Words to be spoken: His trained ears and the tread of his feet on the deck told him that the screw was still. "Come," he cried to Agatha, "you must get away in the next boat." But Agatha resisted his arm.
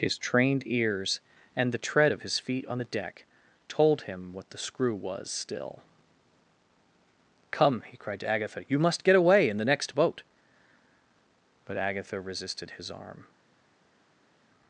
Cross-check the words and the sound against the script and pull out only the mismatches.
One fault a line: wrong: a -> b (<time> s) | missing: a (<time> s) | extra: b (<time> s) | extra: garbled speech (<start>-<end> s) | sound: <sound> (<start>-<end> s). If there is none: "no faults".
wrong: that -> what (4.3 s)